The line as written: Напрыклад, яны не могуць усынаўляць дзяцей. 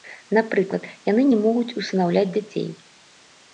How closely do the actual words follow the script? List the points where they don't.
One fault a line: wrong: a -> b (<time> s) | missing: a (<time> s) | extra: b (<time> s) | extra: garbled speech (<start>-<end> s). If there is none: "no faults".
no faults